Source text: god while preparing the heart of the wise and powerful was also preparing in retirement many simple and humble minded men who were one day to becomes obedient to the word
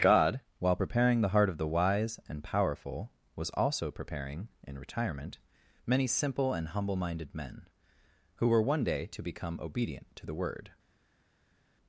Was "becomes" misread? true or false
true